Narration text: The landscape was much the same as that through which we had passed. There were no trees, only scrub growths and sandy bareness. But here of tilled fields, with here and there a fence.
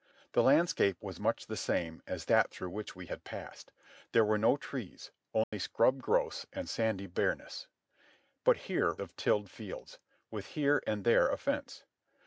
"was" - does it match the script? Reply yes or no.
yes